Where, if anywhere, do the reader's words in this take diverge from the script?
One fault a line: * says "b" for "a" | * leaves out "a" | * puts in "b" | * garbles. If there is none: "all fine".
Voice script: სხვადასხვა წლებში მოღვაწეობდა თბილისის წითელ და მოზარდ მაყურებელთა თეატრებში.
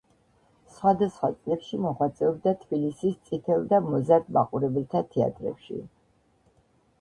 all fine